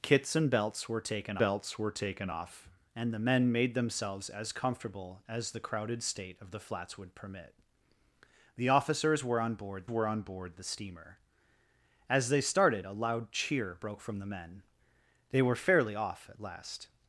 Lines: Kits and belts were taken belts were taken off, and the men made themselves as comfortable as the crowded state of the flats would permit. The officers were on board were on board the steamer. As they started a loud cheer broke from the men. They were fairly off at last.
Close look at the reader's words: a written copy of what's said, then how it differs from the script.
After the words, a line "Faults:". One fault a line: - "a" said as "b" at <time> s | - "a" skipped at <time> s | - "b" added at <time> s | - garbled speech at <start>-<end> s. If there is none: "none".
Kits and belts were taken belts were taken off, and the men made themselves as comfortable as the crowded state of the flats would permit. The officers were on board were on board the steamer. As they started a loud cheer broke from the men. They were fairly off at last.
Faults:
none